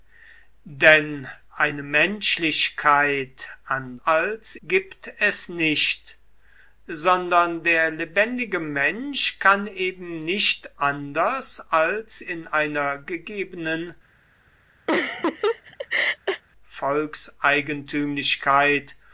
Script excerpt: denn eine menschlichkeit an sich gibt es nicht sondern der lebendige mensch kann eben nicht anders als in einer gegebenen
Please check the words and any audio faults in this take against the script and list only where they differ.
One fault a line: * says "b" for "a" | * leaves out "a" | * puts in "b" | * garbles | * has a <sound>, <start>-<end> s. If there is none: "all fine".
* says "als" for "sich"
* has a laugh, 14.9-16.4 s